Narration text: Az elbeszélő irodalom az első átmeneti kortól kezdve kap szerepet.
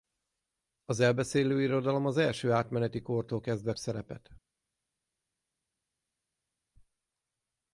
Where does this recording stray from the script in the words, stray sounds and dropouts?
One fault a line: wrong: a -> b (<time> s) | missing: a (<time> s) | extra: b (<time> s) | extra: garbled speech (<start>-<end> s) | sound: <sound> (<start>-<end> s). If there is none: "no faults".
missing: kap (3.7 s)